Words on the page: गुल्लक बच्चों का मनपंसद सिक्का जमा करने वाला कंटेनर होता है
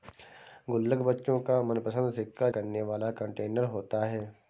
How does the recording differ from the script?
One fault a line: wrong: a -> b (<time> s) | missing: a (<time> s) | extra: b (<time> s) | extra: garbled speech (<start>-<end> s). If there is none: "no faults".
missing: जमा (2.5 s)